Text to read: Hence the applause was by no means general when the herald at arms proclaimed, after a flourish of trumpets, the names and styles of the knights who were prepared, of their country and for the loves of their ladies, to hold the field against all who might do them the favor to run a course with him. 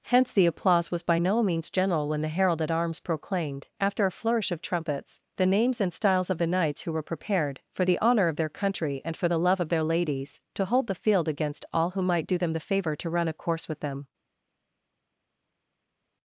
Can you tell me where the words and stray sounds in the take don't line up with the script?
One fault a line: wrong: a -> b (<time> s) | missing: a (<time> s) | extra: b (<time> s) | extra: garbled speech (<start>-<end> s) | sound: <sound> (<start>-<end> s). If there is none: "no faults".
extra: for the honor (7.7 s)
wrong: loves -> love (9.4 s)
wrong: him -> them (13.8 s)